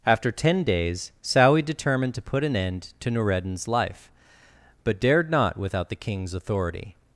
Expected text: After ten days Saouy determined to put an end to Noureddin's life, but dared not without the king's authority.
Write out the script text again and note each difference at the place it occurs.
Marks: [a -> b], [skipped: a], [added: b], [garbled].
After ten days Saouy determined to put an end to Noureddin's life, but dared not without the king's authority.